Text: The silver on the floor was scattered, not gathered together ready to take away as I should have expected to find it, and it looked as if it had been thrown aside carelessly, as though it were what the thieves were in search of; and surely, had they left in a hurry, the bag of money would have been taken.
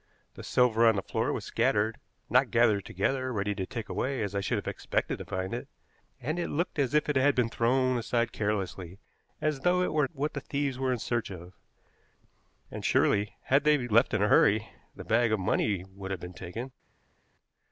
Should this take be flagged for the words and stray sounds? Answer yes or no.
no